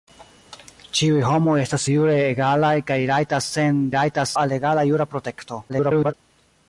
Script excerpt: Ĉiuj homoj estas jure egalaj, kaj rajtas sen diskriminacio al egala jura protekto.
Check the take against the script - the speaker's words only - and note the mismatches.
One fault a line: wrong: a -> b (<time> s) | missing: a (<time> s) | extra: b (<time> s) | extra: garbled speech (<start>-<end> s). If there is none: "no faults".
wrong: diskriminacio -> rajtas (4.0 s)
extra: garbled speech (5.7-6.1 s)